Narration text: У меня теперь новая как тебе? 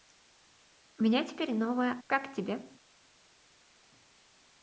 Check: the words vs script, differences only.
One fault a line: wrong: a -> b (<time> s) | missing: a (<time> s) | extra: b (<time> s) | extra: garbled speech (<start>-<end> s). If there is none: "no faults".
no faults